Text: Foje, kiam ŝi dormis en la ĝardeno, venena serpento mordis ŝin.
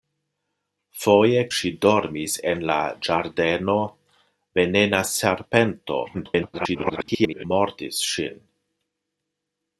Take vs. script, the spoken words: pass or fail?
fail